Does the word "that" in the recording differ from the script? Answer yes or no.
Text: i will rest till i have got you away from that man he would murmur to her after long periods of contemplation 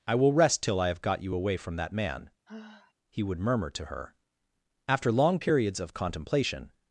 no